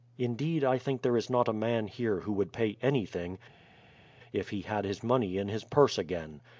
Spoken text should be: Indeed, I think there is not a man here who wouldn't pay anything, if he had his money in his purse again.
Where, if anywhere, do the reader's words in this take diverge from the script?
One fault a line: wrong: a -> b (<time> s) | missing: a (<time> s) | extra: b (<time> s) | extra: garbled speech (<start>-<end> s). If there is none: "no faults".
wrong: wouldn't -> would (2.3 s)